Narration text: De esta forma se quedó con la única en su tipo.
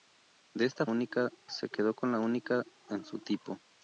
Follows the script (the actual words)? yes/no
no